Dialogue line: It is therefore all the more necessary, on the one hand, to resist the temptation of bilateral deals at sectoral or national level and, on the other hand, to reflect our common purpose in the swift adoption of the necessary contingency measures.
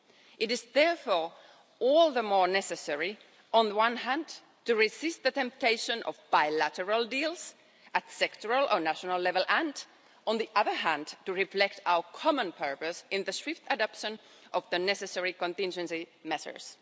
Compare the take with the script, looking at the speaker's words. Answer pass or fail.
pass